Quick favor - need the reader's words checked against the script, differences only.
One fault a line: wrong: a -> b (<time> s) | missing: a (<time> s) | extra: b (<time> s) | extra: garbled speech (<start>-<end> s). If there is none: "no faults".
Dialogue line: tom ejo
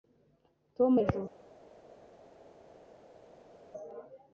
no faults